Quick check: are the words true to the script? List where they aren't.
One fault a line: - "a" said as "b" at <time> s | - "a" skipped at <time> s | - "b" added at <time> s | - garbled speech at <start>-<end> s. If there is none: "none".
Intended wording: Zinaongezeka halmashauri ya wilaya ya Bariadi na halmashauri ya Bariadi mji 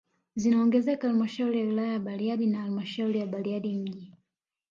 none